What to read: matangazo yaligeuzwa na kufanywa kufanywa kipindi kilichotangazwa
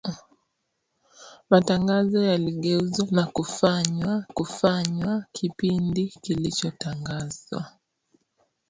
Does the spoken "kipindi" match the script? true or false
true